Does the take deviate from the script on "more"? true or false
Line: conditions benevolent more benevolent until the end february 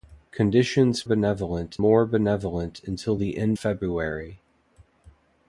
false